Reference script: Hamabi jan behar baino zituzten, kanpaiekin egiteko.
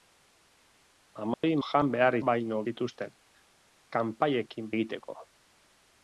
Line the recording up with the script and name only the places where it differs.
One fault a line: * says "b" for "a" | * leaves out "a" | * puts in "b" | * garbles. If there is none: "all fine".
all fine